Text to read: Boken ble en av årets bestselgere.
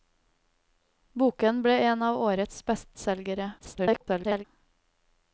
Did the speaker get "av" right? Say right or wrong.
right